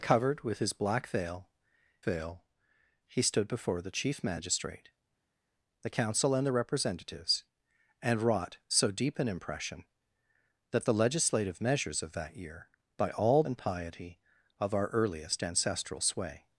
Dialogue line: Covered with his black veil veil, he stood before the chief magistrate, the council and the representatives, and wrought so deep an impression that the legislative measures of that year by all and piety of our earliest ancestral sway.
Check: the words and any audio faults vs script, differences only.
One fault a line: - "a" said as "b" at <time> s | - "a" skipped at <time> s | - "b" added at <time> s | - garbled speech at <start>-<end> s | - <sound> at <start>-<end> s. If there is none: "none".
none